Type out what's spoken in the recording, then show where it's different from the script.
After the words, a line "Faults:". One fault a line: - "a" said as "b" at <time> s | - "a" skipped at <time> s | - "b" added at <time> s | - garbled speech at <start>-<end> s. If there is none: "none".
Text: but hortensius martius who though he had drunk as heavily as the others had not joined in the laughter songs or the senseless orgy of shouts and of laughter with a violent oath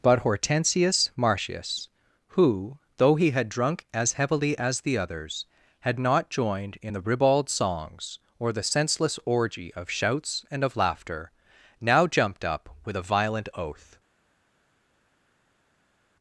but hortensius martius who though he had drunk as heavily as the others had not joined in the ribald songs or the senseless orgy of shouts and of laughter now jumped up with a violent oath
Faults:
- "laughter" said as "ribald" at 7.0 s
- "now jumped up" added at 11.8 s